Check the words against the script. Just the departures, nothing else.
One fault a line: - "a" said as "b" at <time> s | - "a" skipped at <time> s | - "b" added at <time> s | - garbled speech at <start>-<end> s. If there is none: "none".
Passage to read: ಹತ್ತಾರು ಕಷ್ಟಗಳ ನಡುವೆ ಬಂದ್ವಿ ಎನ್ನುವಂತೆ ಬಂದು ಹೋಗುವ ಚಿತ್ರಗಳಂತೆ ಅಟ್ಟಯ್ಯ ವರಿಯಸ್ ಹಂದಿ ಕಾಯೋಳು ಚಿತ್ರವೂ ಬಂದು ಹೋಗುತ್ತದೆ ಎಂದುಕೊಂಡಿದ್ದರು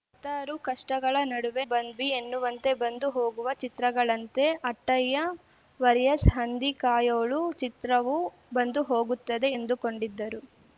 none